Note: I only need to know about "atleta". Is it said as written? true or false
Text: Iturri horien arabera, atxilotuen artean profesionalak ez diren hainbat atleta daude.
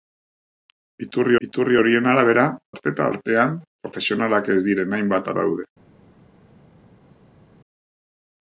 false